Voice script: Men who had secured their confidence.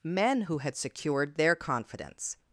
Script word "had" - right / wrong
right